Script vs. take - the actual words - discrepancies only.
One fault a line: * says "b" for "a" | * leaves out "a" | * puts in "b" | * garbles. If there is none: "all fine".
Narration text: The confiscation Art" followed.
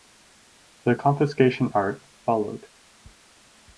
all fine